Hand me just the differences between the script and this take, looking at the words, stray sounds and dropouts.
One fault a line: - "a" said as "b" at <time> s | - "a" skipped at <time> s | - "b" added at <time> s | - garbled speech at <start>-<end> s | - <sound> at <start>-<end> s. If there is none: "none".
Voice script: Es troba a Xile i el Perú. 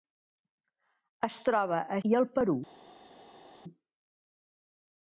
- "Xile" skipped at 2.0 s